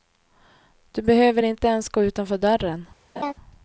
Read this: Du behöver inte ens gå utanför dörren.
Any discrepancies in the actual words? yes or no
no